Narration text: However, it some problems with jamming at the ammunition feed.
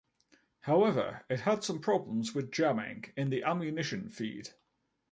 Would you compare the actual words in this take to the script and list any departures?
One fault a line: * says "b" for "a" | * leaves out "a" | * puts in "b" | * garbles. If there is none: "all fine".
* puts in "had"
* says "in" for "at"